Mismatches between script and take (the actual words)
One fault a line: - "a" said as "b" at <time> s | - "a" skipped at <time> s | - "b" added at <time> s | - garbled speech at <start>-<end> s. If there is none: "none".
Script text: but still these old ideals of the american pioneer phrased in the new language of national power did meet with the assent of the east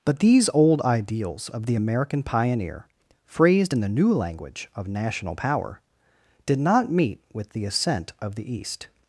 - "still" skipped at 0.2 s
- "not" added at 6.6 s